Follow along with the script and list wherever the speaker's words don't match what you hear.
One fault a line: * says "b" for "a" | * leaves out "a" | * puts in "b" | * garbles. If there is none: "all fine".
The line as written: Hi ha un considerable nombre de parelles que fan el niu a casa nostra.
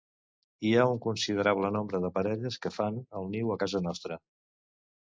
all fine